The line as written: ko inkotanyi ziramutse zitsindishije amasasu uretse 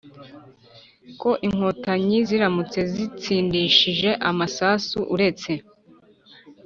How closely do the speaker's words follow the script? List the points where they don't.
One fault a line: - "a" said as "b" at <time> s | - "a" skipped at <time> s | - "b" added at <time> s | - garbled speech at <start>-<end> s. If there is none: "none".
none